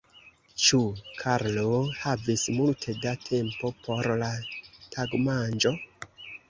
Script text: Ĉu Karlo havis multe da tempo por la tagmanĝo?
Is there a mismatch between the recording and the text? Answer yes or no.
no